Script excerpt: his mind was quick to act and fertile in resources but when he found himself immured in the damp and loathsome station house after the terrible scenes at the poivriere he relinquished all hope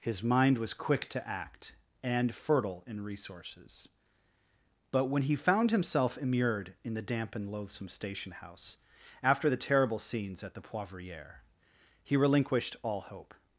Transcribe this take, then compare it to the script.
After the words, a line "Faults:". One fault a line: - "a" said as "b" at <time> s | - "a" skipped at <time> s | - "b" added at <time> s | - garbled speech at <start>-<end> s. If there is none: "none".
his mind was quick to act and fertile in resources but when he found himself immured in the damp and loathsome station house after the terrible scenes at the poivriere he relinquished all hope
Faults:
none